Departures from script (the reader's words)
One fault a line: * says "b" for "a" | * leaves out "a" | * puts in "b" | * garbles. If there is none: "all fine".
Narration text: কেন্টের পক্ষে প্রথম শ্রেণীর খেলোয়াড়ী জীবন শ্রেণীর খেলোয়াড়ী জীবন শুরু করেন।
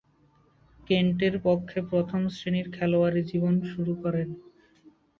* leaves out "শ্রেণীর খেলোয়াড়ী জীবন"